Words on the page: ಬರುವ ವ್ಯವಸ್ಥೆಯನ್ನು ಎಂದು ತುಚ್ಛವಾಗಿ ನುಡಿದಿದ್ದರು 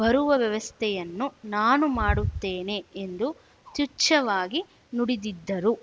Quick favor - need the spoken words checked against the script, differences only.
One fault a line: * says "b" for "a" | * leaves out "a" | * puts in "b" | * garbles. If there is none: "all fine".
* puts in "ನಾನು ಮಾಡುತ್ತೇನೆ"